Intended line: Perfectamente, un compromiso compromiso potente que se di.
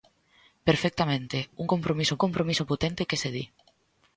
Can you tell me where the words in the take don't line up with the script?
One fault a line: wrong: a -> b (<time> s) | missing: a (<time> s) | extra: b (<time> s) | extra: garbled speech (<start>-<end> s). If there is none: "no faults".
no faults